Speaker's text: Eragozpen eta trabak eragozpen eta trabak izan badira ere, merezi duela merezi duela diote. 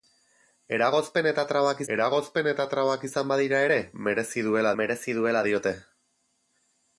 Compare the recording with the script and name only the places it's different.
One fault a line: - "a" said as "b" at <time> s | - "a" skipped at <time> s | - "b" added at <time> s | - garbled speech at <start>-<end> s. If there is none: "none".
none